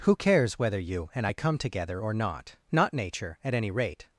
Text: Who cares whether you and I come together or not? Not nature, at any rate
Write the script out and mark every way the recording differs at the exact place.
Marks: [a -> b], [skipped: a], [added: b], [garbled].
Who cares whether you and I come together or not? Not nature, at any rate